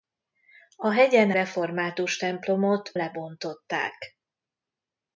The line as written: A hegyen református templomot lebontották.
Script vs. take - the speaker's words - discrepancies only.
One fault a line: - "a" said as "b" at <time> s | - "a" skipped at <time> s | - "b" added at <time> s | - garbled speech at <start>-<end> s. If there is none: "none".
none